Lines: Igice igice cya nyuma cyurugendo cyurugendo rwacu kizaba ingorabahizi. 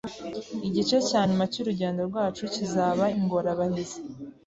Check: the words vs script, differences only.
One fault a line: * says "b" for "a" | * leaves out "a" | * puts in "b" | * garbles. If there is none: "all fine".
* leaves out "igice"
* leaves out "cyurugendo"